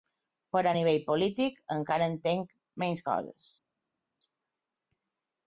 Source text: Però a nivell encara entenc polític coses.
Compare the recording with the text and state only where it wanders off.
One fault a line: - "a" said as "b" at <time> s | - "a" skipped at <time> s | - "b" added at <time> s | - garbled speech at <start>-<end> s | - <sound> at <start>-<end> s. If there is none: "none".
- "polític" added at 1.1 s
- "polític" said as "menys" at 2.8 s